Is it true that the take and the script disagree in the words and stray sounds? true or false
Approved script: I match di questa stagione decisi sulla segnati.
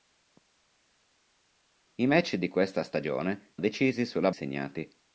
false